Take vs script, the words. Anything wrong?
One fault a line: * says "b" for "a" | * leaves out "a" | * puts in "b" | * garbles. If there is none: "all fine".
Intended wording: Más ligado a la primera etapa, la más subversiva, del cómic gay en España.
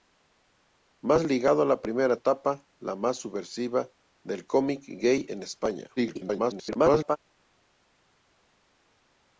* garbles